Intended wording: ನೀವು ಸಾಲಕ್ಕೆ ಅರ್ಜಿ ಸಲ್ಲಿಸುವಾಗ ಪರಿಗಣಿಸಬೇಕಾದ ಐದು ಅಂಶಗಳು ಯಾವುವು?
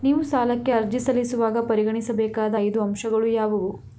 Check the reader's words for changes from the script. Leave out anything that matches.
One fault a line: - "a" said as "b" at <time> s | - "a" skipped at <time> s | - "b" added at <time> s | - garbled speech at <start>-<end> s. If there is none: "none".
none